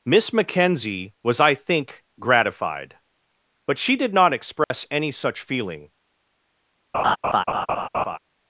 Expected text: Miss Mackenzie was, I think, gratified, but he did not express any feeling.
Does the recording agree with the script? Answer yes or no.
no